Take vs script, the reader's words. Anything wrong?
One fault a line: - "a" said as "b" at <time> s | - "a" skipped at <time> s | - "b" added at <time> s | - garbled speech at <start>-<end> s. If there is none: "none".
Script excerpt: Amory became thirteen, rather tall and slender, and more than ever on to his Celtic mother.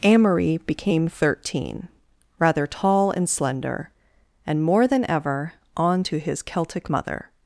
none